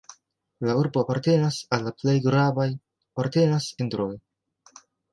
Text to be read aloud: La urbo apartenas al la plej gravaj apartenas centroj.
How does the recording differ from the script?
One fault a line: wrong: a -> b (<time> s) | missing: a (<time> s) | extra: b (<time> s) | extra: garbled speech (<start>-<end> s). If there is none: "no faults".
no faults